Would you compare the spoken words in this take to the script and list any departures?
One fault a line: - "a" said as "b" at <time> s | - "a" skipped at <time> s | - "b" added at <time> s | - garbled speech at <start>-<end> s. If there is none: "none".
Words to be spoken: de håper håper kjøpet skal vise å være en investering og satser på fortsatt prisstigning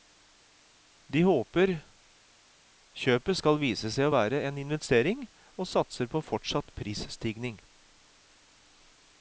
- "håper" skipped at 1.7 s
- "seg" added at 3.9 s